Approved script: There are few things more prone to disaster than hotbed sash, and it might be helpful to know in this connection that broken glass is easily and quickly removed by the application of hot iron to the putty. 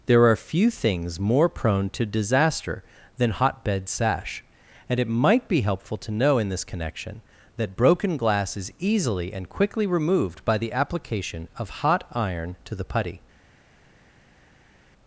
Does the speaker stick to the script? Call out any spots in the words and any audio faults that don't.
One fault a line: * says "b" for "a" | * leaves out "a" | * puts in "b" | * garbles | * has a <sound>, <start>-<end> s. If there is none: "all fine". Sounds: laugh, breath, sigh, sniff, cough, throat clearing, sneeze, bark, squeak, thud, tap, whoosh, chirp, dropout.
all fine